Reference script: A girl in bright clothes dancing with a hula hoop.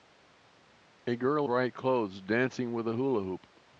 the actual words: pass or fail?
fail